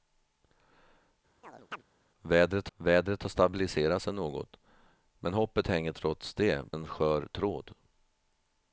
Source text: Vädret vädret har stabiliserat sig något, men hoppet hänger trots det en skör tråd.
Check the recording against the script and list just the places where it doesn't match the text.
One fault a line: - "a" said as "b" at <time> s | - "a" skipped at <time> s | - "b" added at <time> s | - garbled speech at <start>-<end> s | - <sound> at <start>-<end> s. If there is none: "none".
- chirp at 1.4-1.8 s